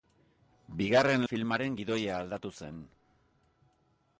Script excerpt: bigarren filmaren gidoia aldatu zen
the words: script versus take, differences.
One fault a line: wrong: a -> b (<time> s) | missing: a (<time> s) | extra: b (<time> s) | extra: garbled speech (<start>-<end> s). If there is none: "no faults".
no faults